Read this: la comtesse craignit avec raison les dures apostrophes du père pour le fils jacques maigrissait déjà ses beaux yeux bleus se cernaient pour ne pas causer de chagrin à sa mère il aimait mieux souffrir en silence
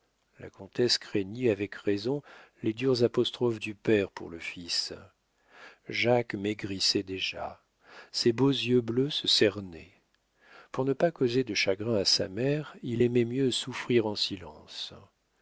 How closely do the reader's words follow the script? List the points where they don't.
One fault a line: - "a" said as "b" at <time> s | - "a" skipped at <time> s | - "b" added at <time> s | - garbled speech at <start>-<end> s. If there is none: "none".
none